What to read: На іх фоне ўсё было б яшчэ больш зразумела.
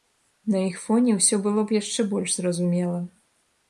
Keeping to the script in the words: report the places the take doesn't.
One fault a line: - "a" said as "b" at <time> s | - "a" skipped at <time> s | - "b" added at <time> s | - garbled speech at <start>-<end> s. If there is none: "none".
none